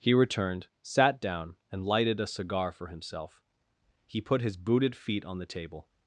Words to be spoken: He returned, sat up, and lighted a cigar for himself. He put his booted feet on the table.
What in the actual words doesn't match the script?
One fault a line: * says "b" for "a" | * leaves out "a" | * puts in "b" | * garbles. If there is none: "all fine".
* says "down" for "up"